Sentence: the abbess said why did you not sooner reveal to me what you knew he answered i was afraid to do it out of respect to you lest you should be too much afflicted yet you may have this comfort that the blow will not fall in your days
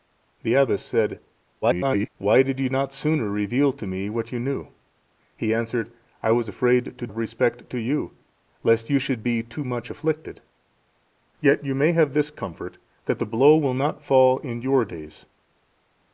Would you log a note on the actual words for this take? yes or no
yes